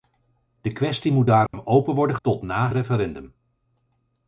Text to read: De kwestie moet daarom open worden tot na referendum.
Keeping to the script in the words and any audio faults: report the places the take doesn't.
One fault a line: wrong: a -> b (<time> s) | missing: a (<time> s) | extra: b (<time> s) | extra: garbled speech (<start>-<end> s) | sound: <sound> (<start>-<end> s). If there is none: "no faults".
sound: dropout (1.5-1.5 s)